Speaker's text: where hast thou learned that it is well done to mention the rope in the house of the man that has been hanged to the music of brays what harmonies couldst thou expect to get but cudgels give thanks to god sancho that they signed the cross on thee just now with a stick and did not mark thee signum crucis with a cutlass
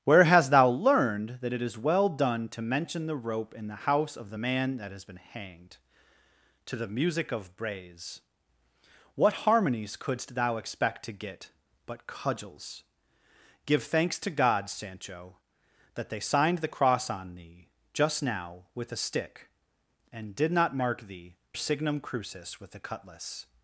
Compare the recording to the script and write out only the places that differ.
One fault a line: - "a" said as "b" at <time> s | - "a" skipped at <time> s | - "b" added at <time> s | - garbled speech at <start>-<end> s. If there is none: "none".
none